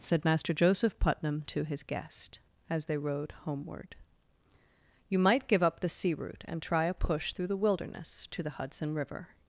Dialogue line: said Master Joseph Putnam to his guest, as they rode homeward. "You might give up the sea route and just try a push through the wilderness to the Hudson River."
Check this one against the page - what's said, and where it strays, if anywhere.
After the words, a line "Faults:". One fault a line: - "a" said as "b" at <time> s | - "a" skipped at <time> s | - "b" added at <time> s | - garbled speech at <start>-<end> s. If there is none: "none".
said Master Joseph Putnam to his guest, as they rode homeward. "You might give up the sea route and try a push through the wilderness to the Hudson River."
Faults:
- "just" skipped at 6.6 s